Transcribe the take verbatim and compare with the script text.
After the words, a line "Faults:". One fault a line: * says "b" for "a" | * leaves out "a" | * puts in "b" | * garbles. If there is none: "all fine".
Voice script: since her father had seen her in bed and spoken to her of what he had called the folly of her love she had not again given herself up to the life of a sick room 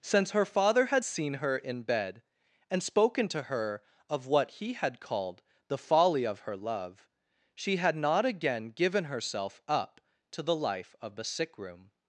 since her father had seen her in bed and spoken to her of what he had called the folly of her love she had not again given herself up to the life of the sick room
Faults:
* says "the" for "a"